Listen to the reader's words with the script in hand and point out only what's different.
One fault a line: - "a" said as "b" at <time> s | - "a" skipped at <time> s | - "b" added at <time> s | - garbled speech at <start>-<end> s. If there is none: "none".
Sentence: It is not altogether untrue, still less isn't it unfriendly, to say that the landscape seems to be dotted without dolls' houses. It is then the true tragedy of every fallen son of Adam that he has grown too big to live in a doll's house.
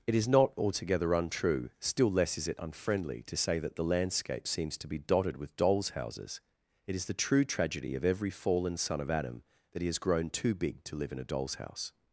- "isn't" said as "is" at 2.4 s
- "without" said as "with" at 5.4 s
- "then" skipped at 7.1 s